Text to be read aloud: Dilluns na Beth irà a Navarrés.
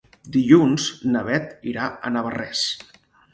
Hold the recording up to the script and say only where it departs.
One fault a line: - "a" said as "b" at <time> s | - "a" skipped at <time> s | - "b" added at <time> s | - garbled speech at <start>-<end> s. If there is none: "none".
none